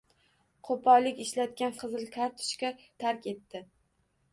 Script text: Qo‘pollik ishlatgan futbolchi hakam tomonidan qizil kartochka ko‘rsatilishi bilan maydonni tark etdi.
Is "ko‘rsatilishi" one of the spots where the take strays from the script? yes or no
yes